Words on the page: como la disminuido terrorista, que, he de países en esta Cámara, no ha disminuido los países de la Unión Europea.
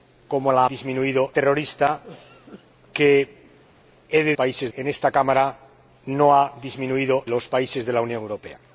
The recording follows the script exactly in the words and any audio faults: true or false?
true